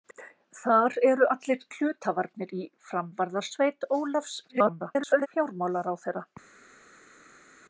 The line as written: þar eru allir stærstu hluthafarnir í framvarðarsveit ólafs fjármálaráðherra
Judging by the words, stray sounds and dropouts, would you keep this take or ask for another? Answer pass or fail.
fail